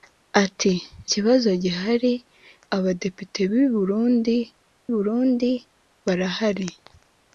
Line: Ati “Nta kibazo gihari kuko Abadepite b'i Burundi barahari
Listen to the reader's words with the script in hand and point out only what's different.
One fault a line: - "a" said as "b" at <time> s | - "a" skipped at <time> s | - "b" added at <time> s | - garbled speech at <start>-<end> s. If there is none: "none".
- "Nta" skipped at 0.7 s
- "kuko" skipped at 2.1 s
- "Burundi" added at 4.9 s